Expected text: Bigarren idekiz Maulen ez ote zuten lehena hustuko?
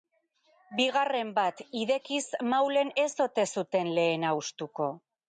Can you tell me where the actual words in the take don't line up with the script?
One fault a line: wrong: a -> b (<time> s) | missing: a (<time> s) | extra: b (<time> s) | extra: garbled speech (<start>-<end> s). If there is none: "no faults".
extra: bat (1.4 s)